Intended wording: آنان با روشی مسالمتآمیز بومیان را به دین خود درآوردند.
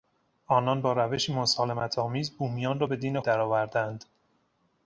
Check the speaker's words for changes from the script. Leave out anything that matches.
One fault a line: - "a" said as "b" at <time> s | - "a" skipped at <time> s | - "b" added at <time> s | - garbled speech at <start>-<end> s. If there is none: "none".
- "خود" skipped at 3.2 s